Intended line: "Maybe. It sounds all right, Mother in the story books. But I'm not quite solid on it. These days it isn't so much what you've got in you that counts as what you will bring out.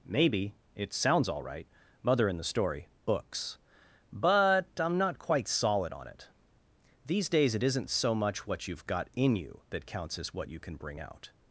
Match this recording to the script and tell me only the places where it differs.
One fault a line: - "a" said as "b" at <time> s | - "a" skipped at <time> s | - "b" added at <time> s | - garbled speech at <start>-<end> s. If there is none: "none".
- "will" said as "can" at 10.6 s